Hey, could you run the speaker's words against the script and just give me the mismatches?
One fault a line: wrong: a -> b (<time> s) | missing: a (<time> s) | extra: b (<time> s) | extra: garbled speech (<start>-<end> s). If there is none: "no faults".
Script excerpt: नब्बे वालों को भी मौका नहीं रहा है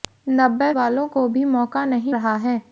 no faults